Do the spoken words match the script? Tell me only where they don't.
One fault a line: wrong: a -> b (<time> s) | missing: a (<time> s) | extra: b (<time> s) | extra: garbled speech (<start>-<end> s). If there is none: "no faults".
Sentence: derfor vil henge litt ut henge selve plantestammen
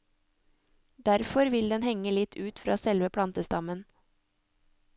extra: den (1.7 s)
wrong: henge -> fra (2.6 s)